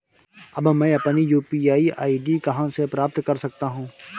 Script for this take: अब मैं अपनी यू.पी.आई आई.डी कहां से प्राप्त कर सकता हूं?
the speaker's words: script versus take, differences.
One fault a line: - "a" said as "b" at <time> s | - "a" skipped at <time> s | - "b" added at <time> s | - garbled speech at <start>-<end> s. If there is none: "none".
none